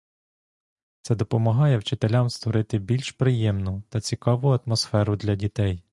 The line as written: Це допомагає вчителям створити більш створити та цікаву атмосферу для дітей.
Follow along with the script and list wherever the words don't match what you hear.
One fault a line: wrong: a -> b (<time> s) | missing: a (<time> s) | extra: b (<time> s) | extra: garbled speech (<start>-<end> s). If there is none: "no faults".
wrong: створити -> приємну (3.1 s)